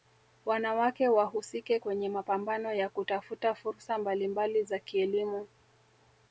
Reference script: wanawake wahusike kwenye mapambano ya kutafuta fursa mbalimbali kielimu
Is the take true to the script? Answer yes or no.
no